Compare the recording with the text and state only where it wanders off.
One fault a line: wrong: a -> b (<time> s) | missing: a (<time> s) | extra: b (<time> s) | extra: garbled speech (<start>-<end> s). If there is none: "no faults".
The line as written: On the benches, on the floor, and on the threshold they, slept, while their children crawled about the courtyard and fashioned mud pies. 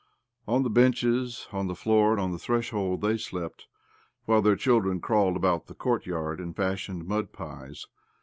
no faults